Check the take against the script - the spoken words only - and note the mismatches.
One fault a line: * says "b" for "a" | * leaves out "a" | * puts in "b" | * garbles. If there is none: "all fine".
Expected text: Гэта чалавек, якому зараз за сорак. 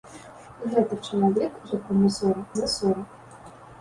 * says "сорак" for "зараз"